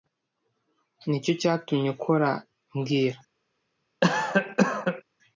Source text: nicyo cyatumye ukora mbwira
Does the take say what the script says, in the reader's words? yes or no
yes